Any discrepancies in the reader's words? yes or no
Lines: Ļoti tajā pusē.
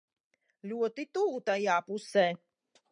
yes